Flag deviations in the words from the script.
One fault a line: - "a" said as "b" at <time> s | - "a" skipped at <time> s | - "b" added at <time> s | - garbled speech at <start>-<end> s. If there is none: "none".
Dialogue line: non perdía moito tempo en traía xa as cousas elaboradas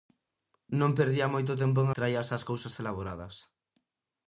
none